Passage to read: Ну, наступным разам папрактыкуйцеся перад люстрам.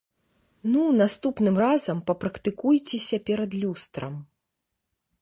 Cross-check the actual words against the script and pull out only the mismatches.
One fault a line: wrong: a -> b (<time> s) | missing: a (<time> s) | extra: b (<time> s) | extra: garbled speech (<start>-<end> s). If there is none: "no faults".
no faults